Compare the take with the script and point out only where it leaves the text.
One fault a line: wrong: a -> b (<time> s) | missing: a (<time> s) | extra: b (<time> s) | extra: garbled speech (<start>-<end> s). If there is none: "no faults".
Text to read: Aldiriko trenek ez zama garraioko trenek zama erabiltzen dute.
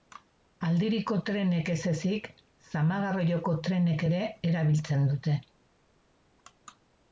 extra: ezik (1.9 s)
wrong: zama -> ere (4.1 s)